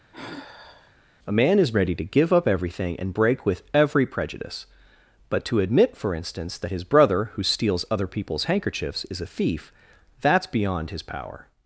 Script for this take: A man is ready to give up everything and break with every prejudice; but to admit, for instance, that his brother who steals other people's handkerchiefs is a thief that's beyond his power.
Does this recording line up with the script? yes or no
yes